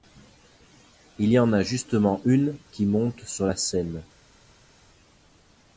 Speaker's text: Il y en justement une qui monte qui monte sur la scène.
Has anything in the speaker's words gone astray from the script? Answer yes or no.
yes